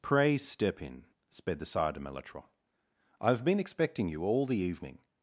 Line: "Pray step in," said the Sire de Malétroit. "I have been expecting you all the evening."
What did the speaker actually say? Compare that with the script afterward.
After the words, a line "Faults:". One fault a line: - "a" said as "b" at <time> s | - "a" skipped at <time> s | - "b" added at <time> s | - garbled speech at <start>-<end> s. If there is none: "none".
"Pray step in," sped the Sire de Malétroit. "I have been expecting you all the evening."
Faults:
- "said" said as "sped" at 1.3 s